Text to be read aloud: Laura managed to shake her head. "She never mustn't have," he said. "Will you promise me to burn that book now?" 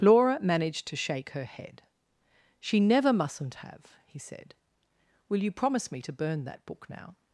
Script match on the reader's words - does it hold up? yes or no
yes